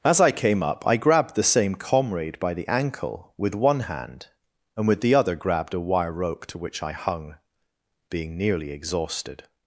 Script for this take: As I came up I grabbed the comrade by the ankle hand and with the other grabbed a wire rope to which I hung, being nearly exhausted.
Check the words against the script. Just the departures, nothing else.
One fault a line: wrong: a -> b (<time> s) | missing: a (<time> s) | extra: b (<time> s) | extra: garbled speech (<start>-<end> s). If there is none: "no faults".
extra: same (1.4 s)
extra: with one (3.4 s)